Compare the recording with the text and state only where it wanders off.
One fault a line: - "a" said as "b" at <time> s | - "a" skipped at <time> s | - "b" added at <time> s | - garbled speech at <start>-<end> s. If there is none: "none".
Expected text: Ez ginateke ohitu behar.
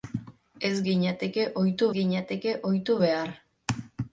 - "ginateke ohitu" added at 1.9 s